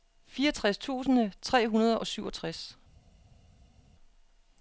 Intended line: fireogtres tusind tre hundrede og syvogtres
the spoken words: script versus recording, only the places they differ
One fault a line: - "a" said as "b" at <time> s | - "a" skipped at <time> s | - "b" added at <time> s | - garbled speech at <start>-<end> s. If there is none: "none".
none